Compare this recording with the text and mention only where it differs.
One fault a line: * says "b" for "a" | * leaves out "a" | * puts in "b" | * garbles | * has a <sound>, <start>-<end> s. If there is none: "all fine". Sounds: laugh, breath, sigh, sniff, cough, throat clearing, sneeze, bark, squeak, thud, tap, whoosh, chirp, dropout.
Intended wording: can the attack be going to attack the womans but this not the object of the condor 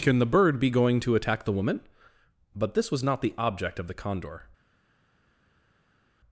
* says "bird" for "attack"
* says "woman" for "womans"
* puts in "was"